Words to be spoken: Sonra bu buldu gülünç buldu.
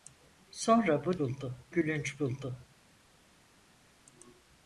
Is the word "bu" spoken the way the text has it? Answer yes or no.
yes